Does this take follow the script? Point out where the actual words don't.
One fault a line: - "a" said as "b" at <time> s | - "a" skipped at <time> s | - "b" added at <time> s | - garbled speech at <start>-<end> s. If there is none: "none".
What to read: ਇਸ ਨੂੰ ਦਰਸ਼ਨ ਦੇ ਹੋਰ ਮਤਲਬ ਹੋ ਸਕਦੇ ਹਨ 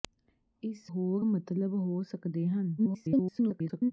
- "ਨੂੰ ਦਰਸ਼ਨ ਦੇ" skipped at 0.9 s
- garbled speech at 2.8-3.9 s